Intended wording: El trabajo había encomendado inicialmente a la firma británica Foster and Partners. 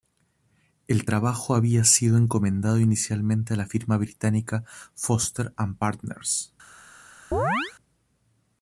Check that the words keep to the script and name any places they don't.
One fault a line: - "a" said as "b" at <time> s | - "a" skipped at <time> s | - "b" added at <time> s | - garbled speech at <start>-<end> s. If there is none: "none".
- "sido" added at 1.8 s